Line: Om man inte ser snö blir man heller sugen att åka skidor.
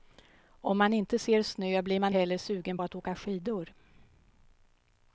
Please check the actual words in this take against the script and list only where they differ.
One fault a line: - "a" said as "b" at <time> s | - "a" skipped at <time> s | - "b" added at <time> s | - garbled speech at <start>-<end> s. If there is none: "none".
none